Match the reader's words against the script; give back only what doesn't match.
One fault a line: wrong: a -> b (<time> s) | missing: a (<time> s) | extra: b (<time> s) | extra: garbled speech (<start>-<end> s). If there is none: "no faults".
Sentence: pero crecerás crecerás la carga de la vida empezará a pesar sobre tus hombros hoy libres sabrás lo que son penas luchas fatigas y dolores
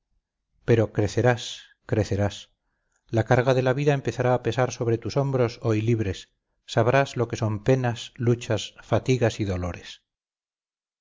no faults